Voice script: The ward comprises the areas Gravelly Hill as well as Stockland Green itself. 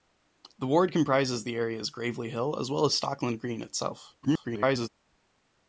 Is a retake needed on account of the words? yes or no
yes